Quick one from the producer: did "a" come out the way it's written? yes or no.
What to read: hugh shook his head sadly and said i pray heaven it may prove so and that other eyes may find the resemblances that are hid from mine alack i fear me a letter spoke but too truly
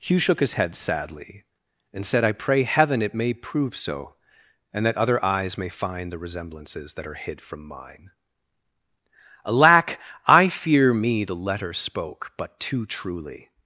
no